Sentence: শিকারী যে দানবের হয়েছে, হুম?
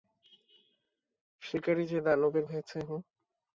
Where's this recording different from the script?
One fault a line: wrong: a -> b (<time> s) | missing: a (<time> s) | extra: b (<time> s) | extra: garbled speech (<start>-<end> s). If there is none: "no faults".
no faults